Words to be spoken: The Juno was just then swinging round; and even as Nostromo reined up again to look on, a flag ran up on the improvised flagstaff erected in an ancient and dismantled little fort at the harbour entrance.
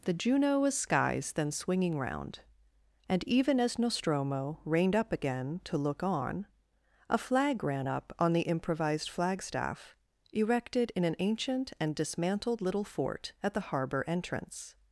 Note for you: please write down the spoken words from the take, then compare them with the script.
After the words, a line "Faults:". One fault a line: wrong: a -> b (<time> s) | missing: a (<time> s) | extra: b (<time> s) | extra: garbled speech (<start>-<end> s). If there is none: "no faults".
The Juno was skies then swinging round; and even as Nostromo reined up again to look on, a flag ran up on the improvised flagstaff erected in an ancient and dismantled little fort at the harbour entrance.
Faults:
wrong: just -> skies (0.8 s)